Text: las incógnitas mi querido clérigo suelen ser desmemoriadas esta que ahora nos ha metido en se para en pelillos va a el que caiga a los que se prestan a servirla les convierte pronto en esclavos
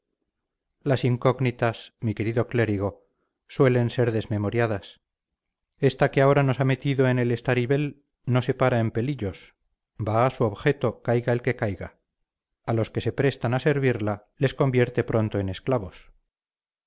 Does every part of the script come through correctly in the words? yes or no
no